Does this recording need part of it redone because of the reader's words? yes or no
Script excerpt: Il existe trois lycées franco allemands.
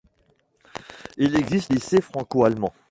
yes